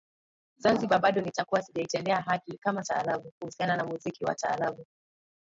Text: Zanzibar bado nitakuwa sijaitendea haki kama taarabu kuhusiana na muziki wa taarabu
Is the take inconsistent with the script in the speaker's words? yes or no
no